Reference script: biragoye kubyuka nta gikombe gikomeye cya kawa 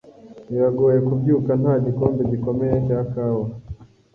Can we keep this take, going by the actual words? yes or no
yes